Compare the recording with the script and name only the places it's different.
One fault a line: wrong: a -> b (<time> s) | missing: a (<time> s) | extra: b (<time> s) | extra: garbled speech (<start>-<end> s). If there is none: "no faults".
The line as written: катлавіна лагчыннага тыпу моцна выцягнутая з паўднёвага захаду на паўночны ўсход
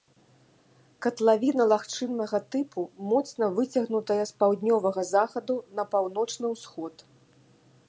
no faults